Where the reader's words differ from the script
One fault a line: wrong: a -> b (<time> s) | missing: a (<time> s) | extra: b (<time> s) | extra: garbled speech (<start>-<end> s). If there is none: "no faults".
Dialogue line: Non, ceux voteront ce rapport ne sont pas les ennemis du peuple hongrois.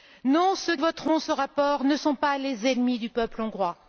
no faults